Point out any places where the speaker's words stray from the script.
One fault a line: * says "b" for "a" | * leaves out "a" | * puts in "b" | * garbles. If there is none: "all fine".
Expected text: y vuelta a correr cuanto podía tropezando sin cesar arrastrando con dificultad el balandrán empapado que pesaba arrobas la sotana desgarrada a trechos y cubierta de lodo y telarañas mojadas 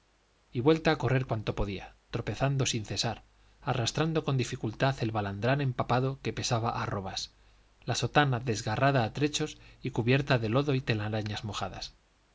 all fine